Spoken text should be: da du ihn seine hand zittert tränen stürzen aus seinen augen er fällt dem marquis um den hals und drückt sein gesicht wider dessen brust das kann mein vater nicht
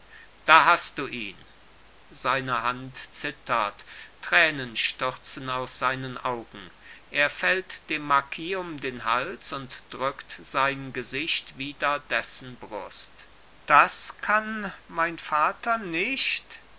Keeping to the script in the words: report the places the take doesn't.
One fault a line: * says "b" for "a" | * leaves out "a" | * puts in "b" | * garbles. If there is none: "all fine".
* puts in "hast"